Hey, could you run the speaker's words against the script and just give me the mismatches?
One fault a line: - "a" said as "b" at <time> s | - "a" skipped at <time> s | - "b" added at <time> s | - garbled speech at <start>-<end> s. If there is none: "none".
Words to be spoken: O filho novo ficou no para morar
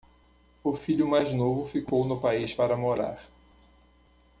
- "mais" added at 1.1 s
- "país" added at 2.2 s